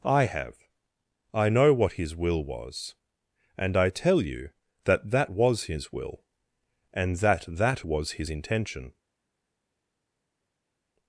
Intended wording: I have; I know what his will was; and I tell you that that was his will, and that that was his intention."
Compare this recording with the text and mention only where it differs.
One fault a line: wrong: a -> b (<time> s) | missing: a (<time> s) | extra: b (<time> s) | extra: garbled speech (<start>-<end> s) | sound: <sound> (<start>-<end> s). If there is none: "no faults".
no faults